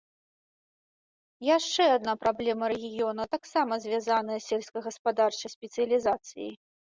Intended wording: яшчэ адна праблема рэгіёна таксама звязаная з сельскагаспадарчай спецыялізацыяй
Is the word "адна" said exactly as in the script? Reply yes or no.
yes